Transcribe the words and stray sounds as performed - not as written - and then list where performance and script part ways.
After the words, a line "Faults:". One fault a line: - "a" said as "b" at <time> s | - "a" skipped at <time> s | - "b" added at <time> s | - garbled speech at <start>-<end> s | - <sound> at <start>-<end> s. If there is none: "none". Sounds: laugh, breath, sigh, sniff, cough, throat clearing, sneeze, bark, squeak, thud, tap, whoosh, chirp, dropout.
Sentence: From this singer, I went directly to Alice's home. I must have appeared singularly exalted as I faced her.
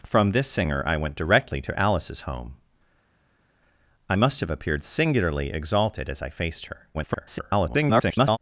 From this singer, I went directly to Alice's home. I must have appeared singularly exalted as I faced her. [garbled]
Faults:
- garbled speech at 6.9-8.4 s